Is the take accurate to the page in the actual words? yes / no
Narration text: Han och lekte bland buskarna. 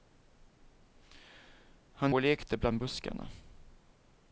yes